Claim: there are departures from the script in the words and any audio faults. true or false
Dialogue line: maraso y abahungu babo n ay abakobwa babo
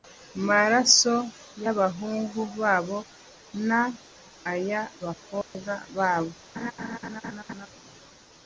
true